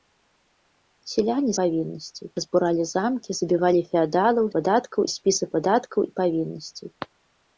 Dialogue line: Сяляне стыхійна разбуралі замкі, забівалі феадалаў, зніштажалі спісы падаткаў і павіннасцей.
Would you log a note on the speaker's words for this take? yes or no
yes